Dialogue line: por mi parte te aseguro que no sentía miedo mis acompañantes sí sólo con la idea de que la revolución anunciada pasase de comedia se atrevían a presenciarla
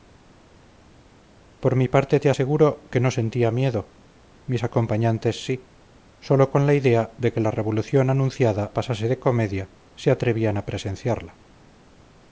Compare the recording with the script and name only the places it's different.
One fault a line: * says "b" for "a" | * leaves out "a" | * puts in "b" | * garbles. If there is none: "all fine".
all fine